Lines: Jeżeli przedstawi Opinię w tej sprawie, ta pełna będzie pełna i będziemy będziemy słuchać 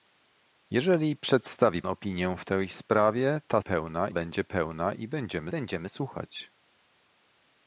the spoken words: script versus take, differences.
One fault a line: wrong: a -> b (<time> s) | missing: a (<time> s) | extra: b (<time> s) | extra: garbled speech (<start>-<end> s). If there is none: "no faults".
no faults